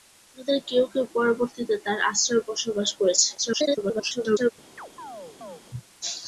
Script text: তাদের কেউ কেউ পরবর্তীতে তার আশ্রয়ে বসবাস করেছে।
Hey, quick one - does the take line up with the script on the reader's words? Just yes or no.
no